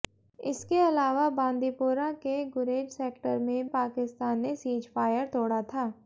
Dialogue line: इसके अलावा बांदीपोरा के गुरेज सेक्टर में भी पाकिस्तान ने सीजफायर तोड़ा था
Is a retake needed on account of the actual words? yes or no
yes